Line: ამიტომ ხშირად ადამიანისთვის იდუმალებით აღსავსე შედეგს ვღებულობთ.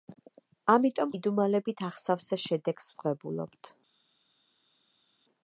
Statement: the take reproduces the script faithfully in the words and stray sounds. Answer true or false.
false